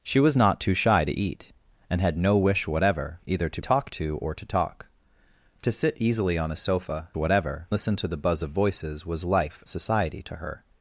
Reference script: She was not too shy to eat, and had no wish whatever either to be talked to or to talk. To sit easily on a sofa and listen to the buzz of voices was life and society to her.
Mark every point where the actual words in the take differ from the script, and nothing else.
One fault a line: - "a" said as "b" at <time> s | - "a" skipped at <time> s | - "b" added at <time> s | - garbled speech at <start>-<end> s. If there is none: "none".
- "be" skipped at 3.6 s
- "and" said as "whatever" at 7.2 s
- "and" skipped at 9.6 s